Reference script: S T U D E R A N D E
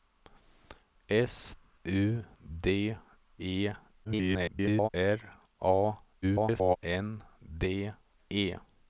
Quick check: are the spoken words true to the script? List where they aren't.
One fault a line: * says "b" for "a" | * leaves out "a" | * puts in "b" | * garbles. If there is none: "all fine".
* leaves out "T"
* garbles
* garbles